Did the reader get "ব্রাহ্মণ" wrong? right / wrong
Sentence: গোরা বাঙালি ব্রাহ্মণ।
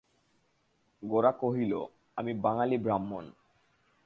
right